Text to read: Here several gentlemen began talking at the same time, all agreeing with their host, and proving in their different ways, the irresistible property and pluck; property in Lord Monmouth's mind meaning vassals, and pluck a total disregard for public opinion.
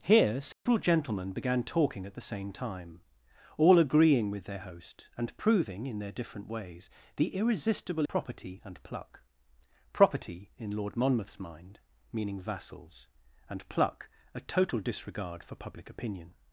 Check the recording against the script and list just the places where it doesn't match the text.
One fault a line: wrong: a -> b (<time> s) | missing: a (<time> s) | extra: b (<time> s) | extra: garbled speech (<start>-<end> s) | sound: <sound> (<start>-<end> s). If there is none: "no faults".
sound: dropout (0.5-0.7 s)